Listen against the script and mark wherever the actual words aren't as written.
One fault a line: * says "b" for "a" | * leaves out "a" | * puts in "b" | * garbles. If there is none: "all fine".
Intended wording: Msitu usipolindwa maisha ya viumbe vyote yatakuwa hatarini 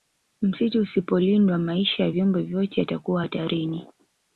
all fine